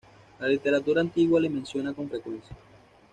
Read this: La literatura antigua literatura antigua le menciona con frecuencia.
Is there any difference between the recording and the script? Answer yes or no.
yes